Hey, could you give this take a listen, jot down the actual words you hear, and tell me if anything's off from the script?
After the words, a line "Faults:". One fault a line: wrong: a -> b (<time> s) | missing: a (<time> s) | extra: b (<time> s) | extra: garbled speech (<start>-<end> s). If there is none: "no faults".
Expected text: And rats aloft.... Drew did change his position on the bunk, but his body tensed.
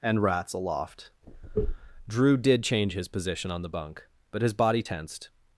And rats aloft.... Drew did change his position on the bunk, but his body tensed.
Faults:
no faults